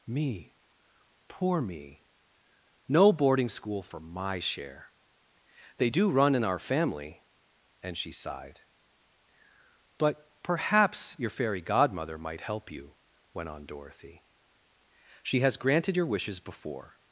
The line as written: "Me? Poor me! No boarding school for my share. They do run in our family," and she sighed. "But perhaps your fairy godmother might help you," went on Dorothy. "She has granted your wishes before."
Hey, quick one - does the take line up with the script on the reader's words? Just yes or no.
yes